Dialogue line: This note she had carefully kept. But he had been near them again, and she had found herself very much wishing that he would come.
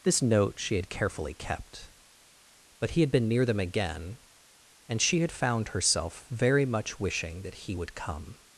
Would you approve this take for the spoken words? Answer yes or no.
yes